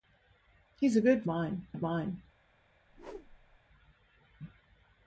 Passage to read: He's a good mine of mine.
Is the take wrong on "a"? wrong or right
right